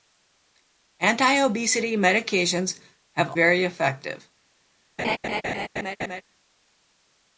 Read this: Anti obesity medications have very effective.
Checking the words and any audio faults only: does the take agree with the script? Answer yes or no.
no